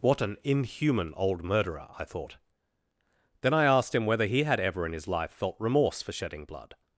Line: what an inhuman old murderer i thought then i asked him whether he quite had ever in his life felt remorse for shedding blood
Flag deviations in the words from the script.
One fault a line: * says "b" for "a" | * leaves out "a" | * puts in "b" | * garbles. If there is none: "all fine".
* leaves out "quite"